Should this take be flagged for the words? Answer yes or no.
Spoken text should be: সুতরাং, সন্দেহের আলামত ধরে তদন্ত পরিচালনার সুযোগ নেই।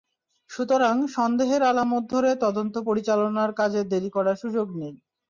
yes